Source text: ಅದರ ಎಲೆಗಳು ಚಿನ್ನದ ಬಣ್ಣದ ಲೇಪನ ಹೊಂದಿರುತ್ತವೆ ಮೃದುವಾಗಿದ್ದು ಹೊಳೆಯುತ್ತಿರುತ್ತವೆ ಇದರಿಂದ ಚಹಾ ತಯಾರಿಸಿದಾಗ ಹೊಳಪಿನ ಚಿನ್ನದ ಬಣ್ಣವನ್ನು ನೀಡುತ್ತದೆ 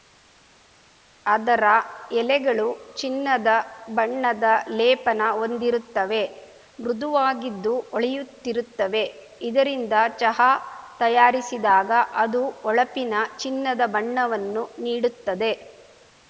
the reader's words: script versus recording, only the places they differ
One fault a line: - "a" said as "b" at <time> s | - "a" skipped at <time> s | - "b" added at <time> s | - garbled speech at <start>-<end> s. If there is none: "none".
- "ಅದು" added at 12.2 s